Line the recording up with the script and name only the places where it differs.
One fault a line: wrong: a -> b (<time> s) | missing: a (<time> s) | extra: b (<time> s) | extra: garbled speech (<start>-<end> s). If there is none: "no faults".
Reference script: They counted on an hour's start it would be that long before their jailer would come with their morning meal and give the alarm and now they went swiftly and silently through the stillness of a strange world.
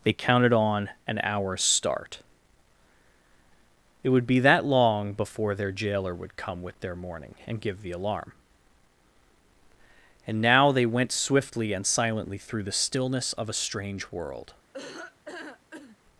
missing: meal (7.3 s)